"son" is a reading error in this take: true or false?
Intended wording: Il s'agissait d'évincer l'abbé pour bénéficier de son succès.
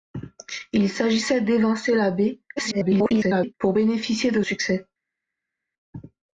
true